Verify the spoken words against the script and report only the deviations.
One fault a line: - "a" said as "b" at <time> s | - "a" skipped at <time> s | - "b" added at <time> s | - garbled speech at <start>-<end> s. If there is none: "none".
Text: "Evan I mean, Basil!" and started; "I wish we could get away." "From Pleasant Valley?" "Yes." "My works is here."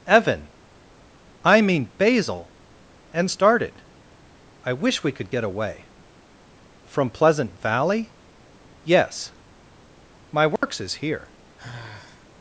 none